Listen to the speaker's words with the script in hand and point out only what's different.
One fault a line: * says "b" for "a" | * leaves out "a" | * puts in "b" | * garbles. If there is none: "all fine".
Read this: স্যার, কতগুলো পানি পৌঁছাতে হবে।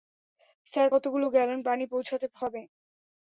* puts in "গ্যালন"